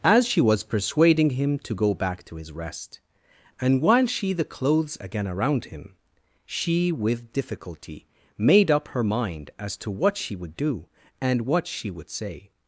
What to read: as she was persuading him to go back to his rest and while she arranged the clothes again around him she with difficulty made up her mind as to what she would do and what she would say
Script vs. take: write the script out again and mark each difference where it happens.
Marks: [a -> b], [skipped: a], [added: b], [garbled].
as she was persuading him to go back to his rest and while she [skipped: arranged] the clothes again around him she with difficulty made up her mind as to what she would do and what she would say